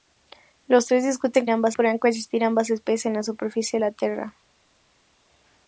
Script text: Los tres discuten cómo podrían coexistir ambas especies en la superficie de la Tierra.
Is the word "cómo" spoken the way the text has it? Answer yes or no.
no